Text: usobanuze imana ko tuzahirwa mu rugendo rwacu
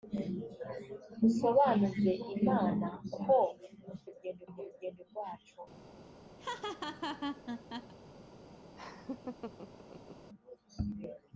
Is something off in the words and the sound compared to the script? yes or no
yes